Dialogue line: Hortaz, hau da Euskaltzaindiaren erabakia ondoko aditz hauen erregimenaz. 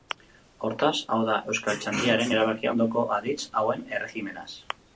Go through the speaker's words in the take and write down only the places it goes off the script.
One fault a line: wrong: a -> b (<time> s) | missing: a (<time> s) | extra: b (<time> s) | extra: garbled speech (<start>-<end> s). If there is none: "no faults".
no faults